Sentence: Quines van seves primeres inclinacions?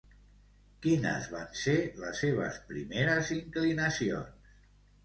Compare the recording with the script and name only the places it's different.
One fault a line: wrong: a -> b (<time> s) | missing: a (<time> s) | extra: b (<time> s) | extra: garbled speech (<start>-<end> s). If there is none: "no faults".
extra: ser les (1.6 s)